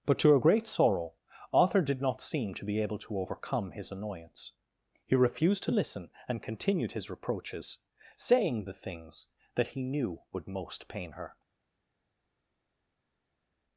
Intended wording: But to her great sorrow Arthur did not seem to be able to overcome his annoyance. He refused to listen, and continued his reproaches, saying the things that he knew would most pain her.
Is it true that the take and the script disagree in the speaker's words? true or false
false